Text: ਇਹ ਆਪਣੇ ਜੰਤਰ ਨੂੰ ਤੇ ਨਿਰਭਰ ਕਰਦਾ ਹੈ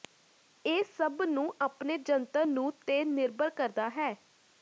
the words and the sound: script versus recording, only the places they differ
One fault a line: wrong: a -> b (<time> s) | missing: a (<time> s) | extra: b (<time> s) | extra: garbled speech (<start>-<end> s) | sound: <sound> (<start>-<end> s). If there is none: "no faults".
extra: ਸਭ ਨੂੰ (0.9 s)